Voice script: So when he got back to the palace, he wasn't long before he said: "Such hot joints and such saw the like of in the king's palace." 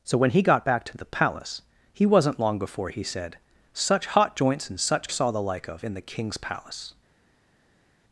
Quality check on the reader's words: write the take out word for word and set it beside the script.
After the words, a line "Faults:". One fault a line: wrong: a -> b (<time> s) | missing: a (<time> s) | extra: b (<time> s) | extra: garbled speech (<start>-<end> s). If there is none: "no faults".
So when he got back to the palace, he wasn't long before he said: "Such hot joints and such saw the like of in the king's palace."
Faults:
no faults